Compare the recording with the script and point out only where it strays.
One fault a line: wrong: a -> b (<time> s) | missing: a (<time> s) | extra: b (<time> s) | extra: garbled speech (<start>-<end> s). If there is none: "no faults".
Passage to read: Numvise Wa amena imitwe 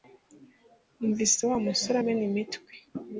extra: musore (1.7 s)